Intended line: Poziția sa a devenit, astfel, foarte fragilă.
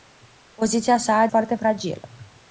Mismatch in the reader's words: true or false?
true